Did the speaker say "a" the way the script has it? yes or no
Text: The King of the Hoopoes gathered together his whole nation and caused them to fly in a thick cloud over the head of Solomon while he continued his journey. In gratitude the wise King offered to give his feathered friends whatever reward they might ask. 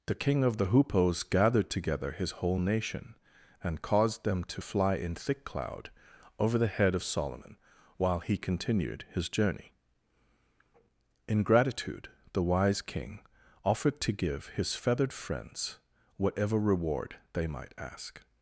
no